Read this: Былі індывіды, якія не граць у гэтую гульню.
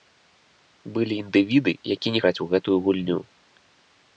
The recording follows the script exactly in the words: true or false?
true